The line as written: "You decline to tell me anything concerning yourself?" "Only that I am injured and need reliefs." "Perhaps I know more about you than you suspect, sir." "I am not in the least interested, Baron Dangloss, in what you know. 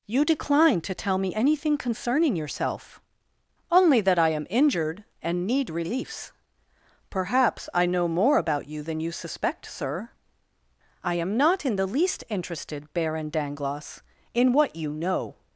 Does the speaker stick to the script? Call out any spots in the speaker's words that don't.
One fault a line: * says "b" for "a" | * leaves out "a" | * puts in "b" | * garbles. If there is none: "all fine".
all fine